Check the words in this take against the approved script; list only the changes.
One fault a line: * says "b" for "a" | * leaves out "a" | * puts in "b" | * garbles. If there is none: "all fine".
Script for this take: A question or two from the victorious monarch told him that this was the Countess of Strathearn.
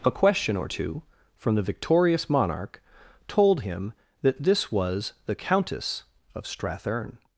all fine